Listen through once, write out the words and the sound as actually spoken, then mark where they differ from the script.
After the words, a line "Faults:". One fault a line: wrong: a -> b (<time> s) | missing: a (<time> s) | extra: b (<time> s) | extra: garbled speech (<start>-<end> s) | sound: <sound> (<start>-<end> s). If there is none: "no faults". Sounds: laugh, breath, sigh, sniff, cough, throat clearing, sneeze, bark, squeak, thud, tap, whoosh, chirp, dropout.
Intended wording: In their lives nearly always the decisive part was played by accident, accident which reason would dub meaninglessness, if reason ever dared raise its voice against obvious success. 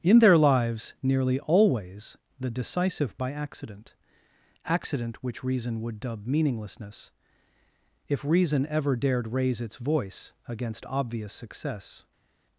In their lives nearly always the decisive by accident, accident which reason would dub meaninglessness, if reason ever dared raise its voice against obvious success.
Faults:
missing: part was played (3.2 s)